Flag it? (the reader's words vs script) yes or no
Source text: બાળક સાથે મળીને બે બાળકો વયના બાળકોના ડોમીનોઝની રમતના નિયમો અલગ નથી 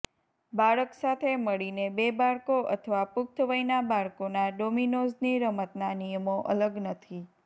yes